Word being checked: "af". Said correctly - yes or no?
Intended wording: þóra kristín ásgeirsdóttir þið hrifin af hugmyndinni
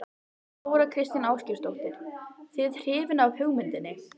yes